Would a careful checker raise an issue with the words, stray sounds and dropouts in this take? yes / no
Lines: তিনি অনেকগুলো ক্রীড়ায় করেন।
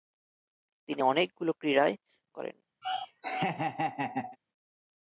yes